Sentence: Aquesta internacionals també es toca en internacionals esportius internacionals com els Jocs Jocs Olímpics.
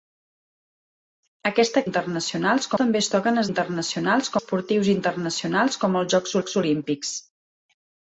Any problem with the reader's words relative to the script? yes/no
no